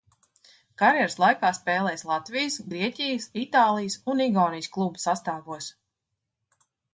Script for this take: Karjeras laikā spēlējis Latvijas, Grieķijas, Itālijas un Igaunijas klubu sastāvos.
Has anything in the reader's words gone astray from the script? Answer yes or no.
no